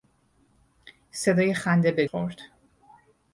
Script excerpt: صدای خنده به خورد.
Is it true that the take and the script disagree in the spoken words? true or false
false